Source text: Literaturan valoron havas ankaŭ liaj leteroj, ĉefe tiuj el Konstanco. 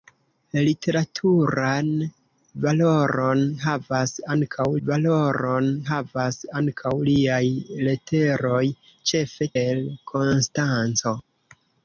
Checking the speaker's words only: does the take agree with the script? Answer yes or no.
no